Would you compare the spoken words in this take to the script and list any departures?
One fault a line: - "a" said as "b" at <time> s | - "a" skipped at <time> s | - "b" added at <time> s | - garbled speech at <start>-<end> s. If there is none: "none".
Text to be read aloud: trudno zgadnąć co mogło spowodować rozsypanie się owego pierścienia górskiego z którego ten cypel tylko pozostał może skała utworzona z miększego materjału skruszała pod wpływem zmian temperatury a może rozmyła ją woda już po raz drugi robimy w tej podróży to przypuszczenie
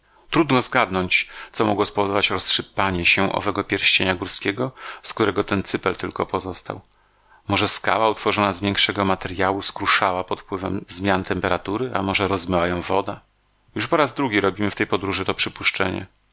none